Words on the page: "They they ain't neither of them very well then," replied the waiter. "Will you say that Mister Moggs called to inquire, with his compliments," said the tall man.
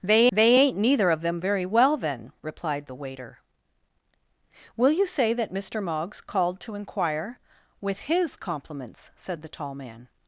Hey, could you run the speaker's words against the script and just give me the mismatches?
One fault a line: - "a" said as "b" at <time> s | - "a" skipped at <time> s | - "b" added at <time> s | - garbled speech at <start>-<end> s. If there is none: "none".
none